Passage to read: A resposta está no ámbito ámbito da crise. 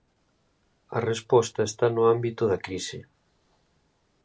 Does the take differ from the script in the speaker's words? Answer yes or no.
yes